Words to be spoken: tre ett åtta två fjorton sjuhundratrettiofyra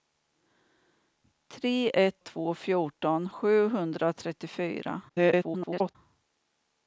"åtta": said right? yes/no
no